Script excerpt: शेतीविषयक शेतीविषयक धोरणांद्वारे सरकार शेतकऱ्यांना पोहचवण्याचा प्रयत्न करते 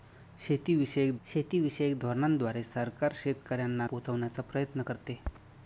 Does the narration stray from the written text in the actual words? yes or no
no